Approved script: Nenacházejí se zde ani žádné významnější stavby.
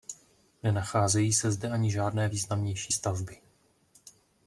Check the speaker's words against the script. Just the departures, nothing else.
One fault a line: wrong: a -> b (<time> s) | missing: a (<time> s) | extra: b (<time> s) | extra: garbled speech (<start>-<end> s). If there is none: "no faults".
no faults